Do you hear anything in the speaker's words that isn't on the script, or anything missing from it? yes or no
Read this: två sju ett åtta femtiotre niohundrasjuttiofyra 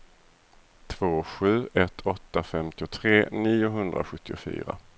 no